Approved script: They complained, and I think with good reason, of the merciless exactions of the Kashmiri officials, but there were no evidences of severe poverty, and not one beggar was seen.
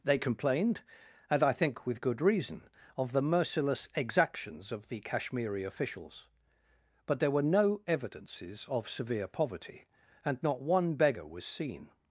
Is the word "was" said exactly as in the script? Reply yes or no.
yes